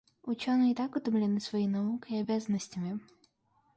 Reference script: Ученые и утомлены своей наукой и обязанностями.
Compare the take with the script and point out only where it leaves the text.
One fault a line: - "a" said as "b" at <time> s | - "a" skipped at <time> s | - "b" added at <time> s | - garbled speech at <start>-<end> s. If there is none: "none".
- "так" added at 0.7 s